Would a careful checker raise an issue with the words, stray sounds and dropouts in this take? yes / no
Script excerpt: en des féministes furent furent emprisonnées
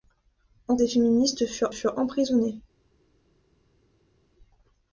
no